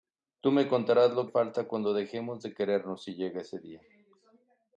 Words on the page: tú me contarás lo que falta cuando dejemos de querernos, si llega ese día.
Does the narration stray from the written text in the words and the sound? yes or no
yes